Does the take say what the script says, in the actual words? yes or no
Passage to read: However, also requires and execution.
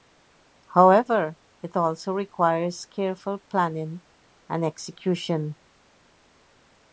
no